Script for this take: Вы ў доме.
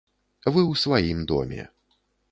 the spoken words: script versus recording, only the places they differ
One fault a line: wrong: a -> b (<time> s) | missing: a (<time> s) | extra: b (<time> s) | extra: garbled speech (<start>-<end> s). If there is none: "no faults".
extra: сваім (0.8 s)